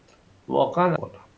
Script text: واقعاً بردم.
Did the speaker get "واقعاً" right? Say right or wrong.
right